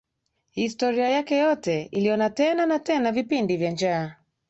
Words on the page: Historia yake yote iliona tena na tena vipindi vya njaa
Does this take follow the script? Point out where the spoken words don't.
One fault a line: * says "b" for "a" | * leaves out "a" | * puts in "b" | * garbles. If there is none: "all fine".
all fine